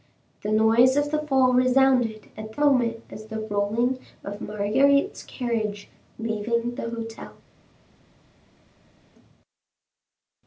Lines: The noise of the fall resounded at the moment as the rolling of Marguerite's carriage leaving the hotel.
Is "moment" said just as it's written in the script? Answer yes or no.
yes